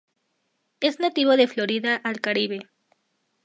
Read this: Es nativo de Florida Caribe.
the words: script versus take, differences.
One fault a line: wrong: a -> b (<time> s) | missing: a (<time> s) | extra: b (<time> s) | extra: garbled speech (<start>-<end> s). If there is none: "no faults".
extra: al (2.0 s)